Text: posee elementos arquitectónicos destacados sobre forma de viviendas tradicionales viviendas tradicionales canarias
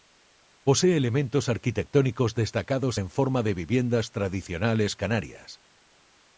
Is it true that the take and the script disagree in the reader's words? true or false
true